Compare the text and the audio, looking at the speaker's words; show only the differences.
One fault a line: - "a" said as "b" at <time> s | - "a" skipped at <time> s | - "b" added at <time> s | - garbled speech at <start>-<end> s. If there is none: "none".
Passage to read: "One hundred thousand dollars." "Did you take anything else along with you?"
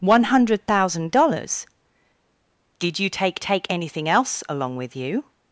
- "take" added at 3.4 s